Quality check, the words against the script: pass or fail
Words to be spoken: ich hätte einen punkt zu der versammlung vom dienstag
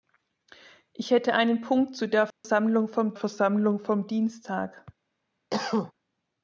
fail